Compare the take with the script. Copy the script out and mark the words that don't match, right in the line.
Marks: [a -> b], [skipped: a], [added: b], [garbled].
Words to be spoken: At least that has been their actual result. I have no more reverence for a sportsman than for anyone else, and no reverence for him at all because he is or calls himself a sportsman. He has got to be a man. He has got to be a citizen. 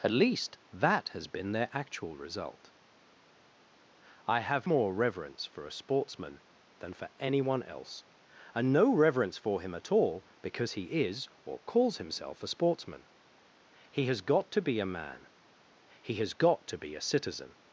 At least that has been their actual result. I have [skipped: no] more reverence for a sportsman than for anyone else, and no reverence for him at all because he is or calls himself a sportsman. He has got to be a man. He has got to be a citizen.